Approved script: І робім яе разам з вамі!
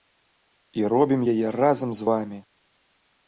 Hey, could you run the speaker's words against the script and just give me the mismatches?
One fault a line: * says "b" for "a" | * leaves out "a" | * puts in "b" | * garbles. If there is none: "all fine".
all fine